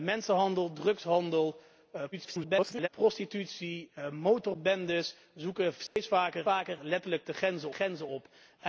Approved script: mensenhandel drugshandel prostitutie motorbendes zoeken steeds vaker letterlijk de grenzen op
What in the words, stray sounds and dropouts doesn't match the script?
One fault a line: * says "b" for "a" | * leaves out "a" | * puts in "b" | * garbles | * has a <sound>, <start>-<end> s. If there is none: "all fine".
* garbles
* has a dropout, 5.9-6.0 s
* puts in "vaker"
* puts in "grenzen"